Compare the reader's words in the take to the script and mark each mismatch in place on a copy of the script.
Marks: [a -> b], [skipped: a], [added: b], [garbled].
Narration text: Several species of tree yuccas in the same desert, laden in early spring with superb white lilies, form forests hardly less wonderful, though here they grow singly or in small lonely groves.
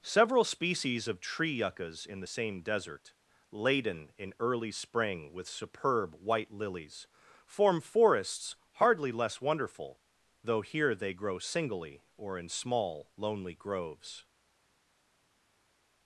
Several species of tree yuccas in the same desert, laden in early spring with superb white lilies, form forests hardly less wonderful, though here they grow singly or in small lonely groves.